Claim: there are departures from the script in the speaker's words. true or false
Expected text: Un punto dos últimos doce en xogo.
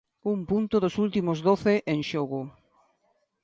false